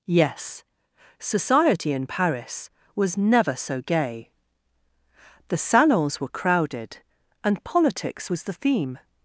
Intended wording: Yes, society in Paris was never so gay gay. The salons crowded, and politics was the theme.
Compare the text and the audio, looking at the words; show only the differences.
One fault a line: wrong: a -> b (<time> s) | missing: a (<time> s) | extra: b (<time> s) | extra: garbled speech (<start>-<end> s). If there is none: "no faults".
missing: gay (4.3 s)
extra: were (6.2 s)